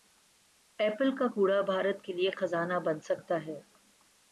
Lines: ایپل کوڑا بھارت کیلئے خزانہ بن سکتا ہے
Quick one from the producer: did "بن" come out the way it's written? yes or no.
yes